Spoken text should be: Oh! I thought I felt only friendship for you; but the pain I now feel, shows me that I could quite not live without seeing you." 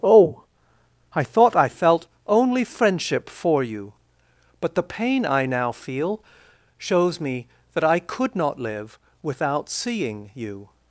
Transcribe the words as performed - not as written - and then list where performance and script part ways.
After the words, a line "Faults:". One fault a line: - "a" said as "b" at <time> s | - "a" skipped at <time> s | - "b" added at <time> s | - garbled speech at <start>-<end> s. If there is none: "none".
Oh! I thought I felt only friendship for you; but the pain I now feel, shows me that I could not live without seeing you."
Faults:
- "quite" skipped at 8.3 s